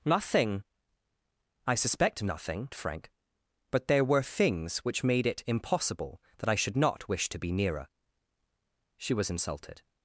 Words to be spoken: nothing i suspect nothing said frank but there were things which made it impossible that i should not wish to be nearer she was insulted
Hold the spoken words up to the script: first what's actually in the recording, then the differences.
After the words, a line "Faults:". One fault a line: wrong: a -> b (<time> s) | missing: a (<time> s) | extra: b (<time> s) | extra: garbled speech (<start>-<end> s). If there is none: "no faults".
nothing i suspect nothing frank but there were things which made it impossible that i should not wish to be nearer she was insulted
Faults:
missing: said (2.7 s)